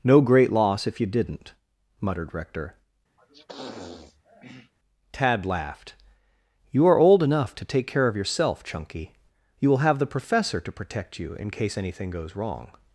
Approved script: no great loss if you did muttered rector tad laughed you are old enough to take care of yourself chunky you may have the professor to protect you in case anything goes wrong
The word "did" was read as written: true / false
false